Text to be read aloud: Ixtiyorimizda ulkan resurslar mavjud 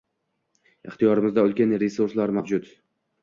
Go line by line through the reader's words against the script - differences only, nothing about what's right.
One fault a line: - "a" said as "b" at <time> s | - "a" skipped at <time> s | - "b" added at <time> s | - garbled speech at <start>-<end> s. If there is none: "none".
none